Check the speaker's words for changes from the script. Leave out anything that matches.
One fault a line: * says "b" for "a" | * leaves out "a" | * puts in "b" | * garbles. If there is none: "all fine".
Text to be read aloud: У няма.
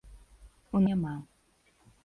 all fine